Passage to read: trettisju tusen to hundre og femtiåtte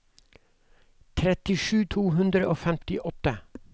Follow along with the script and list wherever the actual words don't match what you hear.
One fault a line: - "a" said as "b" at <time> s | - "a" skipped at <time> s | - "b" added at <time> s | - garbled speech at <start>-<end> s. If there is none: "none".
- "tusen" skipped at 1.8 s